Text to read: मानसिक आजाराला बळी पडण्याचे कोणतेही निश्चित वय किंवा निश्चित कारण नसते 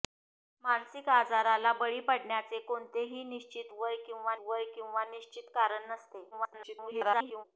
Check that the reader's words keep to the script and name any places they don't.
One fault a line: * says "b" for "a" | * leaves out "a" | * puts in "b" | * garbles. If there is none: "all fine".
* puts in "वय किंवा"
* garbles